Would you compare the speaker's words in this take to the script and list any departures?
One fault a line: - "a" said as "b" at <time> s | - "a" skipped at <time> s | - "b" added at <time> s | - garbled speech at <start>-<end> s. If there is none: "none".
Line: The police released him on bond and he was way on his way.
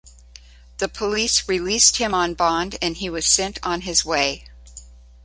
- "way" said as "sent" at 3.3 s